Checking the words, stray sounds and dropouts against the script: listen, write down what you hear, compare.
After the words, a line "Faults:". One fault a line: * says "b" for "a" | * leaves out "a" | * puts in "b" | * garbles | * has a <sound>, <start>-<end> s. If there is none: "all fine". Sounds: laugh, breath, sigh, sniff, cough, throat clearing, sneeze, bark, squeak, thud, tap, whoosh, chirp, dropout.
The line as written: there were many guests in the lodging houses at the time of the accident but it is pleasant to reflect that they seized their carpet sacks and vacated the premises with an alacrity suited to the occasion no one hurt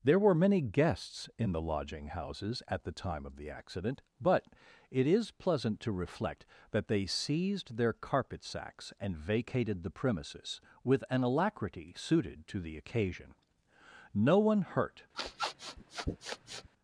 there were many guests in the lodging houses at the time of the accident but it is pleasant to reflect that they seized their carpet sacks and vacated the premises with an alacrity suited to the occasion no one hurt
Faults:
* has a sniff, 15.1-16.7 s